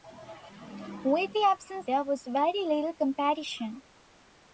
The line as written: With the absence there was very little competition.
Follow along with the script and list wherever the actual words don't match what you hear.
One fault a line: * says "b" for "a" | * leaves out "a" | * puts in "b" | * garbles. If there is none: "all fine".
all fine